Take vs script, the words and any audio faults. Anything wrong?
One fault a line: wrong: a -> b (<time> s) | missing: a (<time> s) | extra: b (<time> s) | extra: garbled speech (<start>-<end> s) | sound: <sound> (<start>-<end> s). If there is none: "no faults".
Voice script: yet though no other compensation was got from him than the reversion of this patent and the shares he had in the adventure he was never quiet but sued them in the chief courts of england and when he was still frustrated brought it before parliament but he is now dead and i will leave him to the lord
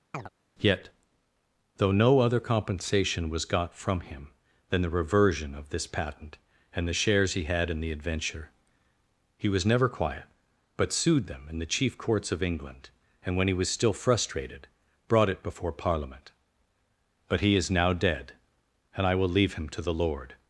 sound: chirp (0.1-0.3 s)